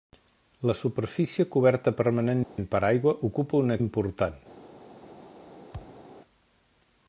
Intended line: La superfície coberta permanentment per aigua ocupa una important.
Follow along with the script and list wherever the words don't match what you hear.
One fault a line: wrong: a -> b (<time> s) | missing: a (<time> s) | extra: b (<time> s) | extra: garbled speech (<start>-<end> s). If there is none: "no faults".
no faults